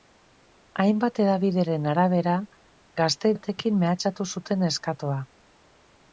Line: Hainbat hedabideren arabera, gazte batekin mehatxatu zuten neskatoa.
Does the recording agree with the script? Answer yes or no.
yes